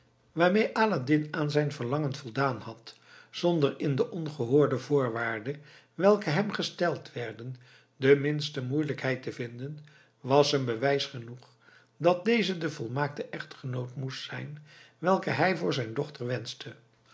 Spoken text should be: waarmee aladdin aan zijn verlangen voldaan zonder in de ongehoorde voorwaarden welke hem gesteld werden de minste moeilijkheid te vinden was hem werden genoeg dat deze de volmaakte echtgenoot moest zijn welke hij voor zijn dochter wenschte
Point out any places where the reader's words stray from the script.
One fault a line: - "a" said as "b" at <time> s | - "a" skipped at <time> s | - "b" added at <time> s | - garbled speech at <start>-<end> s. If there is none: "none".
- "had" added at 2.6 s
- "werden" said as "bewijs" at 10.6 s